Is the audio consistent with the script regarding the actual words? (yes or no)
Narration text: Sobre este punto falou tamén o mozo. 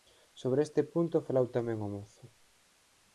yes